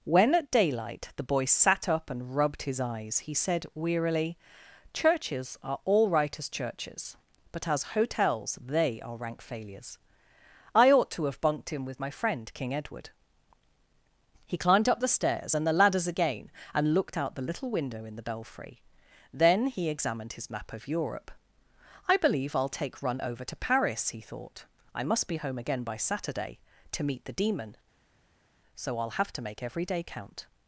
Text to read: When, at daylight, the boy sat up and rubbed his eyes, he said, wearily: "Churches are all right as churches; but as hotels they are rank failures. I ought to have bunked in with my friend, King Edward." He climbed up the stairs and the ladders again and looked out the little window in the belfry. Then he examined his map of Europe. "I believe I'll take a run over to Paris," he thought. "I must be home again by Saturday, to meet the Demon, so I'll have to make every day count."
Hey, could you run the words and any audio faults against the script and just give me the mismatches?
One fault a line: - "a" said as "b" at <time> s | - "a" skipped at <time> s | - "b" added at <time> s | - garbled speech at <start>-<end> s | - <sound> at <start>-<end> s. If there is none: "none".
- "a" skipped at 23.0 s